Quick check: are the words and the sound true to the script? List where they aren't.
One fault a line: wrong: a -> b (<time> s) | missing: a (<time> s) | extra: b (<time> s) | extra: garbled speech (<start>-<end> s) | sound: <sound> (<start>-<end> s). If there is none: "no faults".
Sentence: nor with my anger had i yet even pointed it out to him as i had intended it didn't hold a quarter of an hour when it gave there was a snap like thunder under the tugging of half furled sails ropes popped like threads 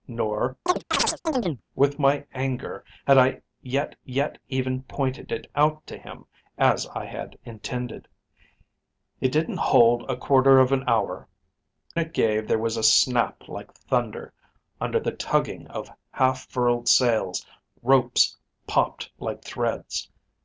sound: chirp (0.7-1.6 s)
extra: yet (4.0 s)
missing: when (11.3 s)